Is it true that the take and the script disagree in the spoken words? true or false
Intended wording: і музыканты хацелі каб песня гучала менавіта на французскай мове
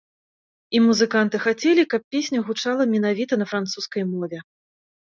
false